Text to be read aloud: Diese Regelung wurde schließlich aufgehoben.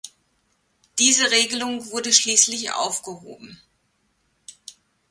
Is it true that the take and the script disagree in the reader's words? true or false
false